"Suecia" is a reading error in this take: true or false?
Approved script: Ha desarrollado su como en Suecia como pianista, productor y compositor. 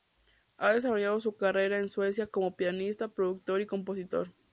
false